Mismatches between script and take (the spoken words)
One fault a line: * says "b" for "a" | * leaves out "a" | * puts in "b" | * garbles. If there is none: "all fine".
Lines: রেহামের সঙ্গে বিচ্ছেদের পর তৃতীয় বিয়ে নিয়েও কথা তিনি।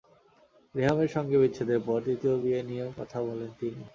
* puts in "বলেন"